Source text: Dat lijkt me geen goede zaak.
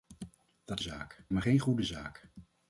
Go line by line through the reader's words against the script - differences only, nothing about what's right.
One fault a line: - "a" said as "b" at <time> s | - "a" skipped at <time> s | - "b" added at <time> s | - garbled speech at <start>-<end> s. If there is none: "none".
- "lijkt" said as "zaak" at 0.8 s